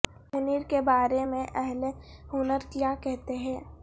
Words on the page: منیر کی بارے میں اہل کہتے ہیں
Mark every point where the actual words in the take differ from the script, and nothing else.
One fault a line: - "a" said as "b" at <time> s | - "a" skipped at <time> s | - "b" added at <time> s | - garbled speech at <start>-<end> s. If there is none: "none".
- "کی" said as "کے" at 0.7 s
- "ہنر کیا" added at 2.3 s